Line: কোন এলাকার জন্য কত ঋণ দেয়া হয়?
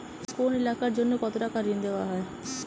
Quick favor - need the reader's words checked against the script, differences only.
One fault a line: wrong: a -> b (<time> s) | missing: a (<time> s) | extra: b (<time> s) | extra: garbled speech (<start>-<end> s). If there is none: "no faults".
extra: টাকা (1.4 s)